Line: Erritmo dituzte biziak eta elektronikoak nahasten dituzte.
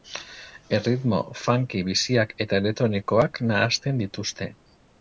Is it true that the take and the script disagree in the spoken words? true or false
true